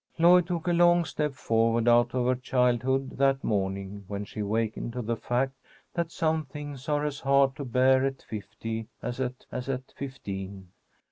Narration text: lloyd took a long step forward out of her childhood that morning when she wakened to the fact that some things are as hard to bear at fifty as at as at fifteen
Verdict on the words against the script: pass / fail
pass